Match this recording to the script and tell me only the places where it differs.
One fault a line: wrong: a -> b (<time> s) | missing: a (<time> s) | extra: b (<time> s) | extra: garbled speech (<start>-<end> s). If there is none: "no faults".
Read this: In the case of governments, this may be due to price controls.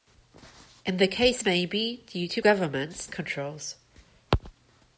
missing: of governments this (1.4 s)
wrong: price -> governments (2.4 s)